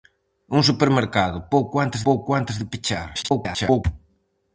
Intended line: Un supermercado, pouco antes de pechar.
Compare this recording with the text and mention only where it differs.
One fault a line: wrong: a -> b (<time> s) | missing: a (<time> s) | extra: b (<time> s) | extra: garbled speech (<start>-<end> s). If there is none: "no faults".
extra: pouco antes (2.1 s)
extra: garbled speech (3.1-3.8 s)